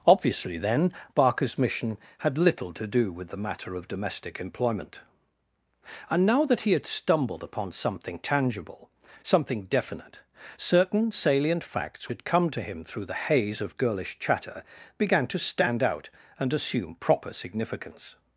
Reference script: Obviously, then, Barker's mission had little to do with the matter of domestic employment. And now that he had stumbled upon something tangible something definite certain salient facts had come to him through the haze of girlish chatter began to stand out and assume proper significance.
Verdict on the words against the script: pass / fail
pass